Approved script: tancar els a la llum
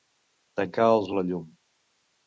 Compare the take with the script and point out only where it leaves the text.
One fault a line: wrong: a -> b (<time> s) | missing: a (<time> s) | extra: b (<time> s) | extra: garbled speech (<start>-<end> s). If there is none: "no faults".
no faults